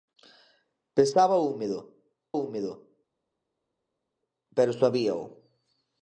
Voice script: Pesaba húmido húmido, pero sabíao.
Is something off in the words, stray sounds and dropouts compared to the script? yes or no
no